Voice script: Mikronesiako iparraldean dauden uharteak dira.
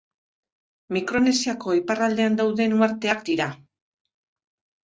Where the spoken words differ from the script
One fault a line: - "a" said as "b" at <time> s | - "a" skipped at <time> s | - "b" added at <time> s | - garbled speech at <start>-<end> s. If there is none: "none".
none